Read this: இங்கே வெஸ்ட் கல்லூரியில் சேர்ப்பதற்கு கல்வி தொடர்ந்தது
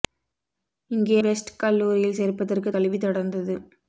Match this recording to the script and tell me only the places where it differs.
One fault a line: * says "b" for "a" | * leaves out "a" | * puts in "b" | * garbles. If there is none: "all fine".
all fine